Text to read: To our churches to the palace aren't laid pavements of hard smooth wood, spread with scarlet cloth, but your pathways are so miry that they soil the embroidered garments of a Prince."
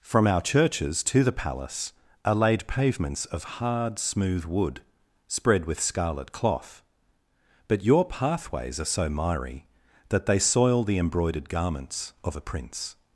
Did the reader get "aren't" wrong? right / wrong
wrong